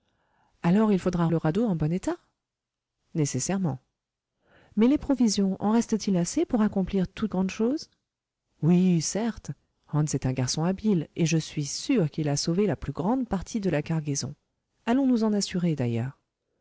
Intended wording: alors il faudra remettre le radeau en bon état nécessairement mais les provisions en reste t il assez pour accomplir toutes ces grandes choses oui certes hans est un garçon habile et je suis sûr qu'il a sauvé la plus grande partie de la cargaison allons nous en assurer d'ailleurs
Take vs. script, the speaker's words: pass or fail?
fail